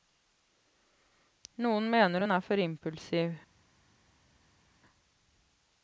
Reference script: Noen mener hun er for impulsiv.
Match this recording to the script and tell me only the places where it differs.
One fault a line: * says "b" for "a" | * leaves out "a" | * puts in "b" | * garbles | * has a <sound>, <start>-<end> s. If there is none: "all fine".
all fine